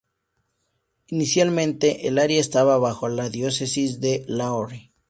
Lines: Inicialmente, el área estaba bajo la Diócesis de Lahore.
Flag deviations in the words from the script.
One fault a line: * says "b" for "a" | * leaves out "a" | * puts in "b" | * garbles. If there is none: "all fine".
all fine